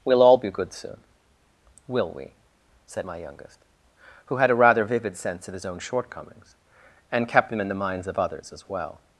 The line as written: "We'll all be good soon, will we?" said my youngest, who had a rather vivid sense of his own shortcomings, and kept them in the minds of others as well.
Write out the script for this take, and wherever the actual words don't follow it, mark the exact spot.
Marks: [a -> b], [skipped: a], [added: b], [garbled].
"We'll all be good soon, will we?" said my youngest, who had a rather vivid sense of his own shortcomings, and kept them in the minds of others as well.